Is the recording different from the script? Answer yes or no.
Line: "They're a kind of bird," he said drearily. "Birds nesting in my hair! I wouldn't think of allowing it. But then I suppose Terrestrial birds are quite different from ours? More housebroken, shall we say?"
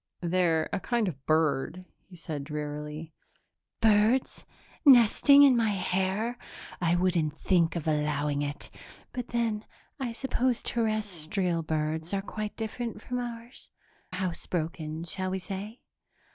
yes